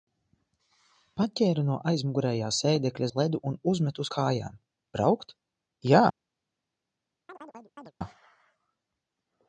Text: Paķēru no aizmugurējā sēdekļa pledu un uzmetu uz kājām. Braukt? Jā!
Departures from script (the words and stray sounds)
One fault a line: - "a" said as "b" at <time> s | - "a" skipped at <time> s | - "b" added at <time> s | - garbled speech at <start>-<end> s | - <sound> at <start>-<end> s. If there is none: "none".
- chirp at 7.3-7.9 s